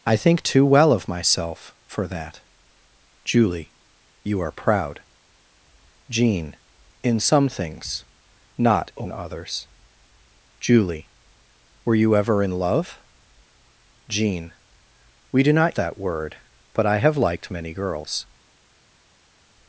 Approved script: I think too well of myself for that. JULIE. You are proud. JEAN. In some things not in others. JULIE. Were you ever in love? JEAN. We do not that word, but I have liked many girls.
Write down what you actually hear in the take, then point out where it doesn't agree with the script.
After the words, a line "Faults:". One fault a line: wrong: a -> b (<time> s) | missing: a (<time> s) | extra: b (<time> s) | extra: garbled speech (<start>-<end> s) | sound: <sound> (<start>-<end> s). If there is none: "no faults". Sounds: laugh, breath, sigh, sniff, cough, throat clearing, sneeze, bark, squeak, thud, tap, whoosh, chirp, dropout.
I think too well of myself for that. JULIE. You are proud. JEAN. In some things not in others. JULIE. Were you ever in love? JEAN. We do not that word, but I have liked many girls.
Faults:
no faults